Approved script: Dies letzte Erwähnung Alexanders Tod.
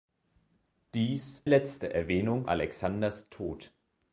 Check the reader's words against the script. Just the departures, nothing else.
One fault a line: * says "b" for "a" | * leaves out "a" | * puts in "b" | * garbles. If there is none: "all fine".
all fine